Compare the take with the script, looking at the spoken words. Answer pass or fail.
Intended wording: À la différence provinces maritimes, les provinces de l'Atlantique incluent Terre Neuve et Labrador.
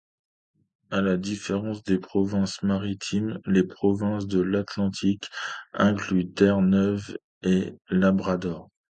fail